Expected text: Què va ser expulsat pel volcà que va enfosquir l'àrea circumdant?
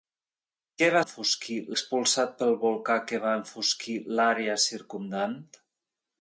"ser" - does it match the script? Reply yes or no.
no